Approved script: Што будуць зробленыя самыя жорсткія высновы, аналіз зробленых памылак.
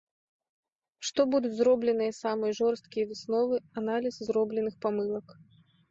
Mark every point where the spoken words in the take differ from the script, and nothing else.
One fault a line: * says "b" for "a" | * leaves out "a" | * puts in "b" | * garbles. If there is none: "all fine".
all fine